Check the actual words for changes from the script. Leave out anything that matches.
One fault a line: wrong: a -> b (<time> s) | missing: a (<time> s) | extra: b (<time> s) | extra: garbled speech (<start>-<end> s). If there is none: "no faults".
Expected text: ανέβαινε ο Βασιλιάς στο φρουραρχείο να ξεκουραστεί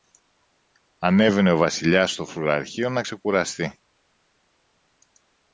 no faults